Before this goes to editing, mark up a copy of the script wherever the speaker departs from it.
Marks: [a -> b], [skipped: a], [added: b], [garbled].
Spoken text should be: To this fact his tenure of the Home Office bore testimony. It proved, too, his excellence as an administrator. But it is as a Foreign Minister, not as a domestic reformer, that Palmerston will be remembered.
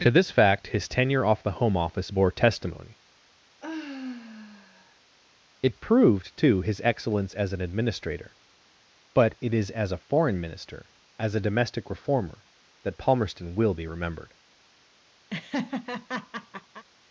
To this fact his tenure [of -> off] the Home Office bore testimony. It proved, too, his excellence as an administrator. But it is as a Foreign Minister, [skipped: not] as a domestic reformer, that Palmerston will be remembered.